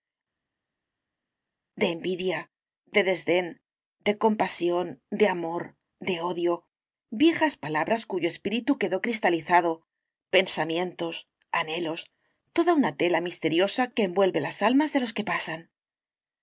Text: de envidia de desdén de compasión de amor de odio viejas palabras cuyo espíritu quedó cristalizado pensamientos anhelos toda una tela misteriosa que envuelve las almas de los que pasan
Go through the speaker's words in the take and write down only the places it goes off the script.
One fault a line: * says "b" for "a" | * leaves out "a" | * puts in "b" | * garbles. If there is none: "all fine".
all fine